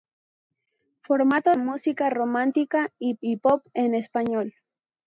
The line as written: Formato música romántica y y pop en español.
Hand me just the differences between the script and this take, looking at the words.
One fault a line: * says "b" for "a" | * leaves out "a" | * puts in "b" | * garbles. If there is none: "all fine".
all fine